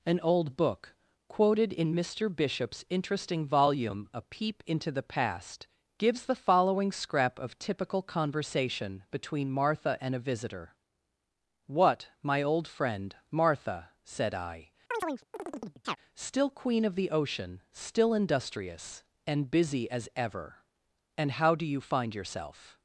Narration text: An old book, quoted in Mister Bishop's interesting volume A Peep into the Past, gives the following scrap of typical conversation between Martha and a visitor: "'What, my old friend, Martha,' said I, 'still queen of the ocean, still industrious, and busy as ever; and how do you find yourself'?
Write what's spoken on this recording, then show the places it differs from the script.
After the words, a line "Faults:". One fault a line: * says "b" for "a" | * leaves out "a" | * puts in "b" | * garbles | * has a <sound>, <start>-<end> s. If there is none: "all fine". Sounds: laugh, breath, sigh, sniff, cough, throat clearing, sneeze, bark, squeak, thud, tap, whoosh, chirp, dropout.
An old book, quoted in Mister Bishop's interesting volume A Peep into the Past, gives the following scrap of typical conversation between Martha and a visitor: "'What, my old friend, Martha,' said I, 'still queen of the ocean, still industrious, and busy as ever; and how do you find yourself'?
Faults:
* has a chirp, 14.9-16.0 s